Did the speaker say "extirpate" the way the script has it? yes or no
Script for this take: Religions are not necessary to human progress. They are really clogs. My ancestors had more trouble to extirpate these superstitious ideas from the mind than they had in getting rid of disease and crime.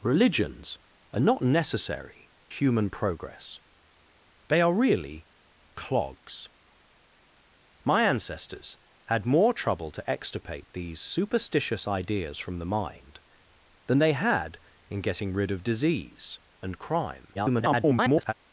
yes